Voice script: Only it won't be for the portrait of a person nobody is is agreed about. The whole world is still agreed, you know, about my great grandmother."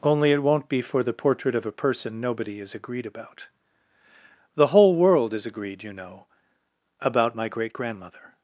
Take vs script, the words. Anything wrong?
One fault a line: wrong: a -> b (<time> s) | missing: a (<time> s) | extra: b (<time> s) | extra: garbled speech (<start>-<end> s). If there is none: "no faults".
missing: is (2.7 s)
missing: still (5.5 s)